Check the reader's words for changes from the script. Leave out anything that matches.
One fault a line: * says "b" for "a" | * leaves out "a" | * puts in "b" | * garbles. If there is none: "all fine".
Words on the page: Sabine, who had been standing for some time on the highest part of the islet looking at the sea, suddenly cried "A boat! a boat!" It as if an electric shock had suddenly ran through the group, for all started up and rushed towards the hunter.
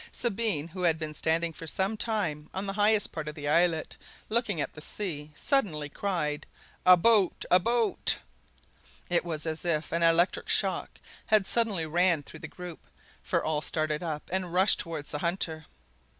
* puts in "was"